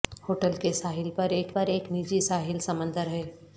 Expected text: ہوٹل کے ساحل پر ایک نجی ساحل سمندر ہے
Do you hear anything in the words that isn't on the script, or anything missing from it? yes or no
yes